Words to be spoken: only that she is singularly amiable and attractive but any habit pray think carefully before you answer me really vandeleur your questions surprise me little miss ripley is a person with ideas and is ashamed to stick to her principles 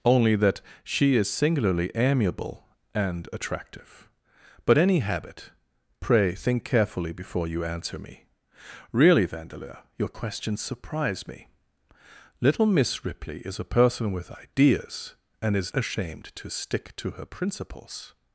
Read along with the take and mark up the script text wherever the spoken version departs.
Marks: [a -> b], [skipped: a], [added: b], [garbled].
only that she is singularly amiable and attractive but any habit pray think carefully before you answer me really vandeleur your questions surprise me little miss ripley is a person with ideas and is ashamed to stick to her principles